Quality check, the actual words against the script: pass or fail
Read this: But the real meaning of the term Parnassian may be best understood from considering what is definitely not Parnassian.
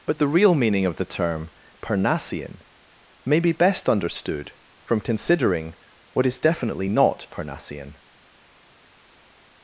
pass